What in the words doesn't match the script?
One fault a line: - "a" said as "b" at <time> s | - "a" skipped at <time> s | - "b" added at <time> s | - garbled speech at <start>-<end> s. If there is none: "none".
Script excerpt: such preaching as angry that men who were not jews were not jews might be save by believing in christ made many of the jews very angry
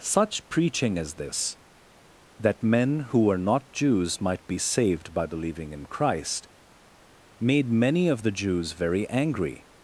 - "angry" said as "this" at 1.1 s
- "were not jews" skipped at 4.2 s
- "save" said as "saved" at 4.6 s